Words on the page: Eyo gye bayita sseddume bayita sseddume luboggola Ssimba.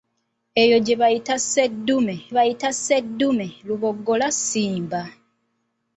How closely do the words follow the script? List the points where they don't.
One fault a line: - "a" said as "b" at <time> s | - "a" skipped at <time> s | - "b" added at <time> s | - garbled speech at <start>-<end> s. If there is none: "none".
none